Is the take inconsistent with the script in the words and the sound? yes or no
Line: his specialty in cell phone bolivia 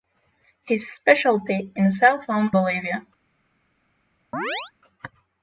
yes